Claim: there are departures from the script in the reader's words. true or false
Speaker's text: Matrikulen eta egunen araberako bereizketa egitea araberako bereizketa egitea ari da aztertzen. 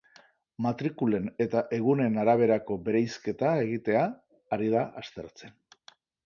true